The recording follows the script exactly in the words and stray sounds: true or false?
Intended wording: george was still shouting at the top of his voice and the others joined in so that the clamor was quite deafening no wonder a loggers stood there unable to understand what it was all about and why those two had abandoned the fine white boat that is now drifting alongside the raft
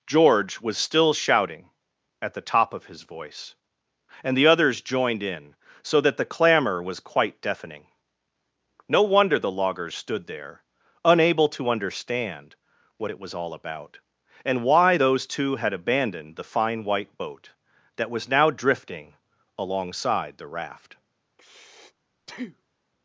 false